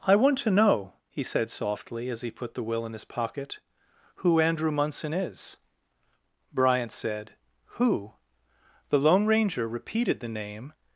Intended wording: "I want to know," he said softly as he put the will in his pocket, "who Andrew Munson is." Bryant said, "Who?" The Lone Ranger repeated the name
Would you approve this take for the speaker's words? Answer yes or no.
yes